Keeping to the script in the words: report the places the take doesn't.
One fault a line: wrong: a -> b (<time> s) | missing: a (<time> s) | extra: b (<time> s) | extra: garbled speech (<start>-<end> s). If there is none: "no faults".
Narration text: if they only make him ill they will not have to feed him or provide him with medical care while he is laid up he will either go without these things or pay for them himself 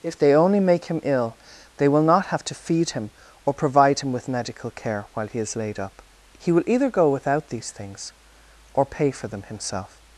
no faults